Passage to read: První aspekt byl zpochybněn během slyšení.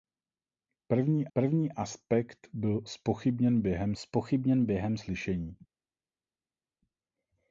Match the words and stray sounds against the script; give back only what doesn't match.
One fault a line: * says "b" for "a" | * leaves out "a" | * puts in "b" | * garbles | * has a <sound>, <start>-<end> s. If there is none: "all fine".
* puts in "první"
* puts in "zpochybněn během"